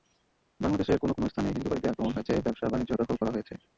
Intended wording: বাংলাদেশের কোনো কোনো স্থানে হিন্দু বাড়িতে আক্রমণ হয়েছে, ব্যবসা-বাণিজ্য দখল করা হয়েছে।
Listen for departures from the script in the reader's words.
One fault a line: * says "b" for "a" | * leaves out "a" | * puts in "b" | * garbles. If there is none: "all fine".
all fine